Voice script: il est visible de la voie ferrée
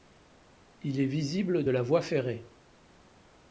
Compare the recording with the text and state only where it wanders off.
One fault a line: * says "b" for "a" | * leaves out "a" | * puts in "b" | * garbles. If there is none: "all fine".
all fine